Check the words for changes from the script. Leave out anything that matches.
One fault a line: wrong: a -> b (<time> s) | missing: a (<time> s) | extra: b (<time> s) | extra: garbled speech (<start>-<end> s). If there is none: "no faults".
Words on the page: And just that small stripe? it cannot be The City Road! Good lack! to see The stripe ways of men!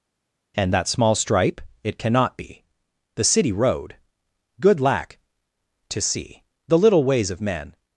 missing: just (0.7 s)
wrong: stripe -> little (6.8 s)